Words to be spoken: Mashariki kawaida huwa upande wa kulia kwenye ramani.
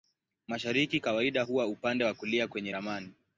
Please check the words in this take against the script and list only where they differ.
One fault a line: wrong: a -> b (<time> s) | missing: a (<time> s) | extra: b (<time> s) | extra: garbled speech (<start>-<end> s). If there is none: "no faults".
no faults